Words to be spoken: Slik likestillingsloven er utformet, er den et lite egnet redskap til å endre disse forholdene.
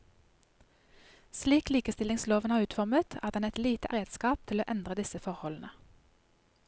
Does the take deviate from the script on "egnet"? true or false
true